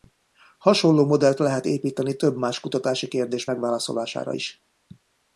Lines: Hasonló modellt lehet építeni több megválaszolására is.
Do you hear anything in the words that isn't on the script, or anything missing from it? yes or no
yes